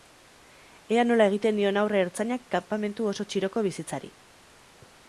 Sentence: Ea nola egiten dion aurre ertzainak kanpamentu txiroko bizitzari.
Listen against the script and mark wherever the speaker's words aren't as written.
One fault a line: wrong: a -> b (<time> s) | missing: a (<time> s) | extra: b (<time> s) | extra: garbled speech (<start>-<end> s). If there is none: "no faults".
extra: oso (3.1 s)